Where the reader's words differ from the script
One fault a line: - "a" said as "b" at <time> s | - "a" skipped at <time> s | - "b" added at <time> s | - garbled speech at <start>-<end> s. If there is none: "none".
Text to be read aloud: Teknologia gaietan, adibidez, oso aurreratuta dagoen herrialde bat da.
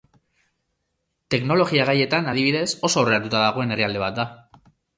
none